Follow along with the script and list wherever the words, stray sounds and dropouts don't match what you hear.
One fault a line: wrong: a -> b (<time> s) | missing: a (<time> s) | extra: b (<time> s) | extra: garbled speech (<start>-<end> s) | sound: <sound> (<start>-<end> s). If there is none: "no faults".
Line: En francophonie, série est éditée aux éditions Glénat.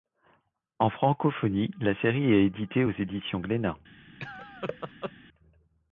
extra: la (1.8 s)
sound: laugh (4.2-5.1 s)